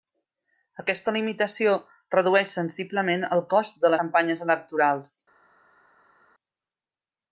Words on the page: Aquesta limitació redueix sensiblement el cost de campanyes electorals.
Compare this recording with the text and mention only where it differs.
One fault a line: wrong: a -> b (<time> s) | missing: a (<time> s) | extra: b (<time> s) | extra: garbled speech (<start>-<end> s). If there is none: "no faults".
no faults